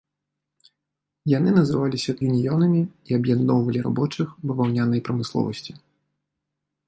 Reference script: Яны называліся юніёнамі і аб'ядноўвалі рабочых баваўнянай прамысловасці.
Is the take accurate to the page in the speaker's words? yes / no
yes